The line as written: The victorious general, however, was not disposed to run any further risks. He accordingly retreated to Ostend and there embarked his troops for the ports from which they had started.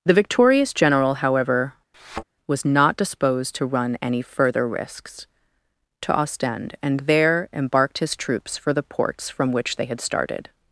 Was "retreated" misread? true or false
true